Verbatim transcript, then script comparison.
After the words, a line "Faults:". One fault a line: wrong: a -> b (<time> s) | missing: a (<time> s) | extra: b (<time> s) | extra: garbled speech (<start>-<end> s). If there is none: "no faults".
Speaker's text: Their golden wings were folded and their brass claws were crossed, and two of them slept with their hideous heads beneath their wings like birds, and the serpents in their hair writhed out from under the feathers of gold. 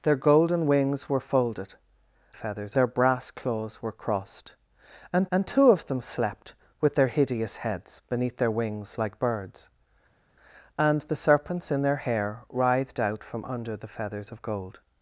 Their golden wings were folded feathers their brass claws were crossed, and and two of them slept with their hideous heads beneath their wings like birds, and the serpents in their hair writhed out from under the feathers of gold.
Faults:
wrong: and -> feathers (2.3 s)
extra: and (5.3 s)